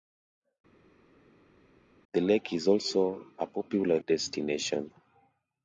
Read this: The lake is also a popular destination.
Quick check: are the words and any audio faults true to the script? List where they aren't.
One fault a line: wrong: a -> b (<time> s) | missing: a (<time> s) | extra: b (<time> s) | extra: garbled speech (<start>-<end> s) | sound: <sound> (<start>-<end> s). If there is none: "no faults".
no faults